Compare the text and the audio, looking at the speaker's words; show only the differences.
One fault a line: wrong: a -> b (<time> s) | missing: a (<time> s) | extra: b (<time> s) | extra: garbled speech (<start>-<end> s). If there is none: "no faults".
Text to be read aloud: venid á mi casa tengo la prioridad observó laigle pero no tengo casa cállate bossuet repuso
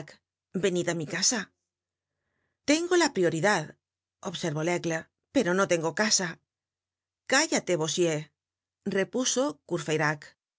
no faults